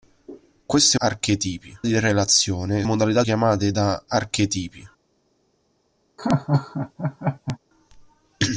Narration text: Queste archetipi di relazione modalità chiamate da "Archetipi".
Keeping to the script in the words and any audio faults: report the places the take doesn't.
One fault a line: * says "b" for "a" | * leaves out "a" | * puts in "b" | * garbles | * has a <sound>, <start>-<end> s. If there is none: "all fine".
* has a laugh, 6.2-7.6 s